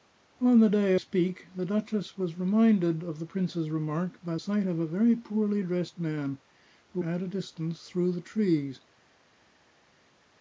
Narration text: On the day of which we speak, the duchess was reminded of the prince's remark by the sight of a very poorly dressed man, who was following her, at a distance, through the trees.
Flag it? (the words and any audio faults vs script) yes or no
yes